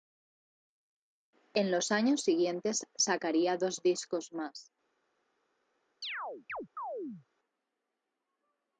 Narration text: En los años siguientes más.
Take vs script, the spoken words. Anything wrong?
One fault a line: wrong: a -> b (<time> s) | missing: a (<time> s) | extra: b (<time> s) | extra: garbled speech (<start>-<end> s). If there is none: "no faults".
extra: sacaría dos discos (3.0 s)